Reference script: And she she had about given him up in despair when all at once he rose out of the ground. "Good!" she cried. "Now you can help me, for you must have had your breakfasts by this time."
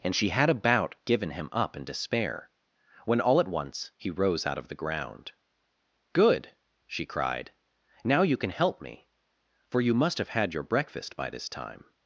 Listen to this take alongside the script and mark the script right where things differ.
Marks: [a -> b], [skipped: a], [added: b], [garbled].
And she [skipped: she] had about given him up in despair when all at once he rose out of the ground. "Good!" she cried. "Now you can help me, for you must have had your [breakfasts -> breakfast] by this time."